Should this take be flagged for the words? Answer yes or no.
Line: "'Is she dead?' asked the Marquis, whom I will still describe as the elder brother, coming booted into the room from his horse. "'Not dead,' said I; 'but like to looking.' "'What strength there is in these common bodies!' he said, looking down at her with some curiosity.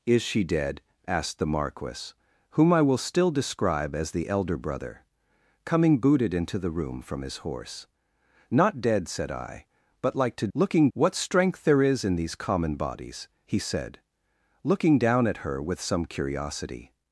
no